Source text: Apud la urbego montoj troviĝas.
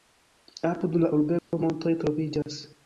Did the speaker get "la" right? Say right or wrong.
right